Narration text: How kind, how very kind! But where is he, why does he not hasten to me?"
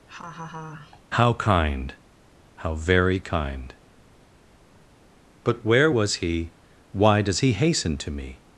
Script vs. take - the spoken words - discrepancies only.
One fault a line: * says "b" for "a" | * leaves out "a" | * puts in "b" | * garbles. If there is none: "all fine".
* says "was" for "is"
* leaves out "not"